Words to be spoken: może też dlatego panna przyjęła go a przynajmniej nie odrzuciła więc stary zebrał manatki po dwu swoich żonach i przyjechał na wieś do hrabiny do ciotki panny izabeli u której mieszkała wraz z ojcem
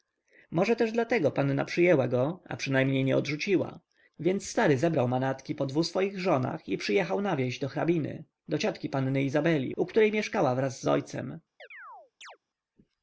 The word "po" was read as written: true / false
true